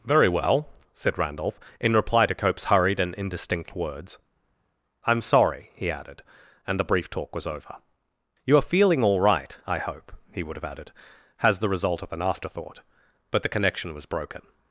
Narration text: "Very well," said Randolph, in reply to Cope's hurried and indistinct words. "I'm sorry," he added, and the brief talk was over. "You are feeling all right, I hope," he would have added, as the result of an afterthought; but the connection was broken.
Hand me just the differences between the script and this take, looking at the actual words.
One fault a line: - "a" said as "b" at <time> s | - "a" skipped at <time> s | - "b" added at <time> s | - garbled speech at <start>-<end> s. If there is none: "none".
- "as" said as "has" at 11.4 s